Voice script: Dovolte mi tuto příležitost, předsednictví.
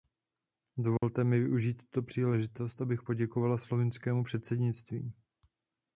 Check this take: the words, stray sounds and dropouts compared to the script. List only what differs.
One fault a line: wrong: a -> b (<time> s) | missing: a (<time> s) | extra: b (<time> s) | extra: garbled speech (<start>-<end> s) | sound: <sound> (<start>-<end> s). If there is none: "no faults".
sound: dropout (1.0-1.0 s)
extra: využít (1.4 s)
extra: abych poděkovala slovinskému (2.8 s)